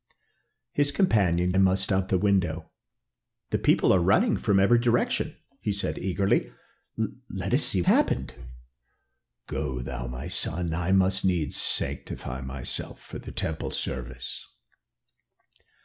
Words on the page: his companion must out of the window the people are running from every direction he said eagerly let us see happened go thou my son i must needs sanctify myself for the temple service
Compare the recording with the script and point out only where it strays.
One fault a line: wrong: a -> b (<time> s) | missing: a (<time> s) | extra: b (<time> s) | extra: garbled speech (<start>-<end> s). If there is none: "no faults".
no faults